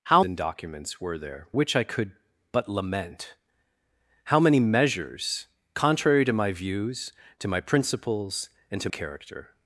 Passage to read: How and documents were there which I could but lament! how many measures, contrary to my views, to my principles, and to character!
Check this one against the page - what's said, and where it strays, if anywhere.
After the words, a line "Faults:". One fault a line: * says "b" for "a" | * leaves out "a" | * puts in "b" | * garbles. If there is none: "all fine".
How and documents were there which I could but lament! how many measures, contrary to my views, to my principles, and to character!
Faults:
all fine